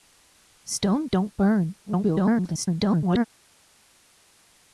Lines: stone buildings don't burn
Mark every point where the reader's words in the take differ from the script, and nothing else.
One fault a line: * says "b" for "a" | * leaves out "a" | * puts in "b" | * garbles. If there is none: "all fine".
* leaves out "buildings"
* garbles